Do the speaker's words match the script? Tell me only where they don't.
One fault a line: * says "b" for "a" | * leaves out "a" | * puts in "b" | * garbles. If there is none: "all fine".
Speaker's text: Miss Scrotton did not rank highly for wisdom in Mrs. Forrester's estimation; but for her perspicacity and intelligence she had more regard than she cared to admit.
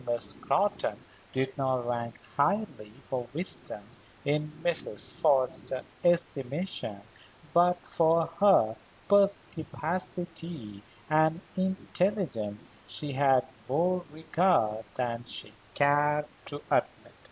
all fine